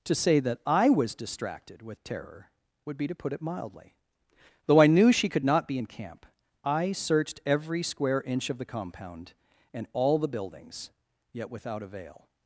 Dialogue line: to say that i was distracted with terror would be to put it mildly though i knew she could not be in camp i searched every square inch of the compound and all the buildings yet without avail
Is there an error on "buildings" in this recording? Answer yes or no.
no